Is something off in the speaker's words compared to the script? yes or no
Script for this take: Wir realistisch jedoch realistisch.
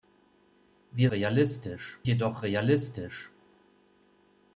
no